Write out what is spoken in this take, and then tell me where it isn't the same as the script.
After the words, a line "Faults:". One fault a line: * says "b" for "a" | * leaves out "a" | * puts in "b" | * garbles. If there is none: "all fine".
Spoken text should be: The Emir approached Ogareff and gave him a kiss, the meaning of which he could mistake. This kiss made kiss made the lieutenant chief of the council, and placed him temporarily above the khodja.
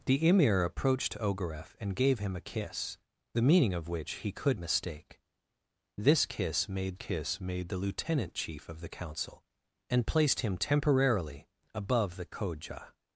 The Emir approached Ogareff and gave him a kiss, the meaning of which he could mistake. This kiss made kiss made the lieutenant chief of the council, and placed him temporarily above the khodja.
Faults:
all fine